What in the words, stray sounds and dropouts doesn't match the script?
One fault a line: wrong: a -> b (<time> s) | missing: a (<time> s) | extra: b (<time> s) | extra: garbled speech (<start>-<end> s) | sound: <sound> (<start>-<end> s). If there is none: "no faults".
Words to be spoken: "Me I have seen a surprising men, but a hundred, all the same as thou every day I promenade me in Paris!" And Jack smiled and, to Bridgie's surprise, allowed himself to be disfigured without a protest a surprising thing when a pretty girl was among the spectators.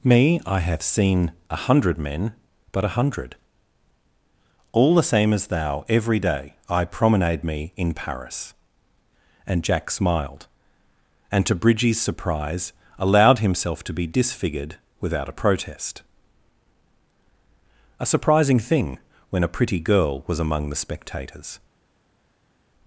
wrong: surprising -> hundred (1.6 s)